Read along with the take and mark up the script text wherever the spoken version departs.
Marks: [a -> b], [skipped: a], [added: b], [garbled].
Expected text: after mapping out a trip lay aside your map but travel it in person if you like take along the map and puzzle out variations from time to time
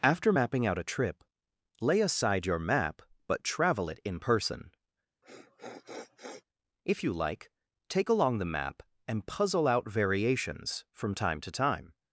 after mapping out a trip lay aside your map but travel it in person if you like take along the map and puzzle out variations from time to time